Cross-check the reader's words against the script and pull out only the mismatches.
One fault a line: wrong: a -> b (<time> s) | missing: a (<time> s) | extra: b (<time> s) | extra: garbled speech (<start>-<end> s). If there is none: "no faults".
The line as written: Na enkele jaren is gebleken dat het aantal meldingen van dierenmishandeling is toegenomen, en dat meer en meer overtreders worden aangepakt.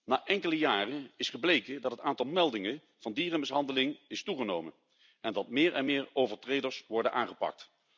no faults